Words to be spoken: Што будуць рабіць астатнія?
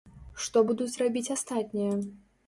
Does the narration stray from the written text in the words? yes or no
no